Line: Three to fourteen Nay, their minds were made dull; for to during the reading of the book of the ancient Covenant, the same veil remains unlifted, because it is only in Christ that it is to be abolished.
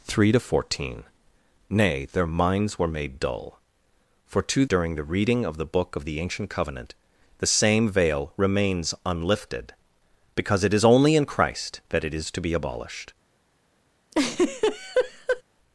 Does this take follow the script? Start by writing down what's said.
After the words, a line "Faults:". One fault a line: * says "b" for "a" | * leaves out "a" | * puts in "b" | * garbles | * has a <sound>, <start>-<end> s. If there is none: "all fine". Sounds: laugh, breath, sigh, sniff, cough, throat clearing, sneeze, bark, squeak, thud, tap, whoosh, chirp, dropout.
Three to fourteen Nay, their minds were made dull; for to during the reading of the book of the ancient Covenant, the same veil remains unlifted, because it is only in Christ that it is to be abolished.
Faults:
* has a laugh, 14.1-15.4 s